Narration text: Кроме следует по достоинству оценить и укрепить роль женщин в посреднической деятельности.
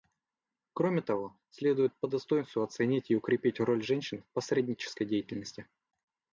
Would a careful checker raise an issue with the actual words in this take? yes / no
yes